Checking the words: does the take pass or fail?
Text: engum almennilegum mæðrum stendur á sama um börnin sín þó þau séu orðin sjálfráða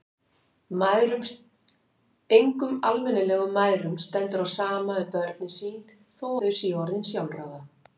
pass